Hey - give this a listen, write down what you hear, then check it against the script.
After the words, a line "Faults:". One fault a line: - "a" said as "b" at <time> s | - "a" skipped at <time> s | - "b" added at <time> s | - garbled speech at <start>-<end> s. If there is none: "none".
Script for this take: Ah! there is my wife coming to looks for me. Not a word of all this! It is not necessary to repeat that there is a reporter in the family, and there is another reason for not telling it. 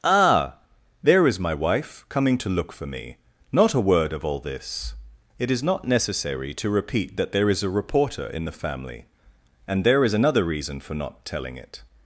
Ah! there is my wife coming to look for me. Not a word of all this! It is not necessary to repeat that there is a reporter in the family, and there is another reason for not telling it.
Faults:
- "looks" said as "look" at 2.5 s